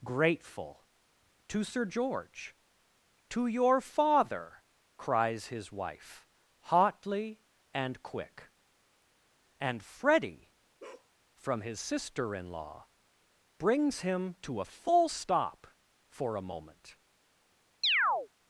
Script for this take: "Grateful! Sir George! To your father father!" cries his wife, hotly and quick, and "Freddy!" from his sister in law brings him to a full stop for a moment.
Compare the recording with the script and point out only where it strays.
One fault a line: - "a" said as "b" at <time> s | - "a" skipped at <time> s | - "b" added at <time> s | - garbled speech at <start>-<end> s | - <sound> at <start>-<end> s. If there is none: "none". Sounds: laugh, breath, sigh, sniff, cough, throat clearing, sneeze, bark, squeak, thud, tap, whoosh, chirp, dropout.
- "To" added at 1.5 s
- "father" skipped at 4.6 s
- bark at 10.8-11.1 s
- chirp at 17.8-18.3 s